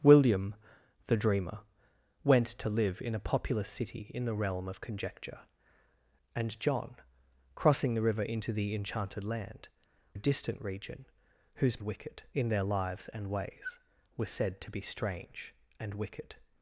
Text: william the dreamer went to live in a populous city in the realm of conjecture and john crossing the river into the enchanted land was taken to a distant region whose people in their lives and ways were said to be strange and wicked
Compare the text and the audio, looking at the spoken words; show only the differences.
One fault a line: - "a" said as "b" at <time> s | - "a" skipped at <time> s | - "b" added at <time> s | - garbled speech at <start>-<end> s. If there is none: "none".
- "was taken to" skipped at 9.7 s
- "people" said as "wicked" at 11.8 s